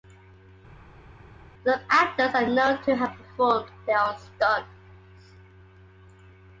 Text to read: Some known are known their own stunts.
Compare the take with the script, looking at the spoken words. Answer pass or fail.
fail